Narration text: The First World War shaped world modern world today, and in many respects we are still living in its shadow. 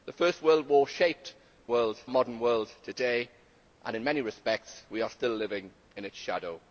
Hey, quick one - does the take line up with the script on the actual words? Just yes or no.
yes